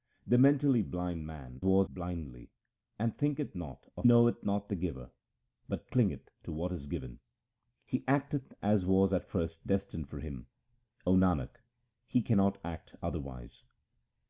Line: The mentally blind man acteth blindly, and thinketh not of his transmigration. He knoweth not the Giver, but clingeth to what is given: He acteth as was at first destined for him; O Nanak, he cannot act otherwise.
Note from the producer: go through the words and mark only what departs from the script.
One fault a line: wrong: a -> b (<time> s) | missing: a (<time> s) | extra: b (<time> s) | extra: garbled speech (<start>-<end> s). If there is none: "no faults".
wrong: acteth -> was (1.6 s)
missing: his transmigration He (4.1 s)